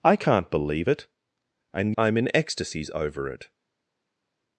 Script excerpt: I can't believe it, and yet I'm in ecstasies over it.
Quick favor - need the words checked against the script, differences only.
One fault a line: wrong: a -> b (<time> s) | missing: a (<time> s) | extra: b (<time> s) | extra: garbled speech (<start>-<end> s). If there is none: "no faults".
missing: yet (2.0 s)